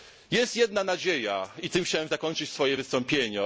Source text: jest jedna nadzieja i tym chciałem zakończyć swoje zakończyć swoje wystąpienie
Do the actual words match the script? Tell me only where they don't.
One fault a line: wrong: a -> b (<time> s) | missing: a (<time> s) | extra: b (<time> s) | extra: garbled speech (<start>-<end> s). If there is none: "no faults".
missing: zakończyć swoje (2.8 s)